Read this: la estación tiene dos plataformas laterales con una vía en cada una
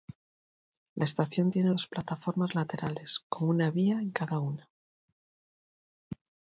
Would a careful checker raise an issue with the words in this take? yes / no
no